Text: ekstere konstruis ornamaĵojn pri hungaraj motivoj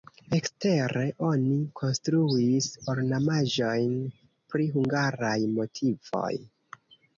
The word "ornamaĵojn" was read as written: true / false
true